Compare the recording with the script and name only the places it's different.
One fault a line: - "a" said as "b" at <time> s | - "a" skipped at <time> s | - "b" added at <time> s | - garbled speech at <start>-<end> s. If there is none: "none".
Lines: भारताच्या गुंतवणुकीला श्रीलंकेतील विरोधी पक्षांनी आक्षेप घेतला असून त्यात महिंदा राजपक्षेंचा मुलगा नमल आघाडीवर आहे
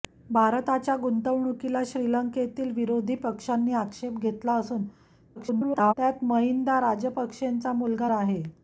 - garbled speech at 5.4-5.9 s
- "नमल आघाडीवर" skipped at 8.1 s